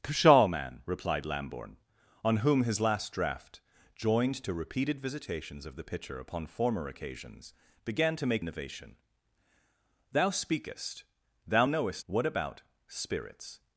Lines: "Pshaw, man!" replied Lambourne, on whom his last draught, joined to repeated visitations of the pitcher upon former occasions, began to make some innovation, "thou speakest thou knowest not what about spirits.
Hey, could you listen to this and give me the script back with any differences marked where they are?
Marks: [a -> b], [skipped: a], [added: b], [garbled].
"Pshaw, man!" replied Lambourne, on whom his last draught, joined to repeated visitations of the pitcher upon former occasions, began to make [skipped: some] innovation, "thou speakest thou knowest [skipped: not] what about spirits.